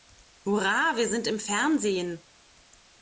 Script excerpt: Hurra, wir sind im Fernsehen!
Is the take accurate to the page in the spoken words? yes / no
yes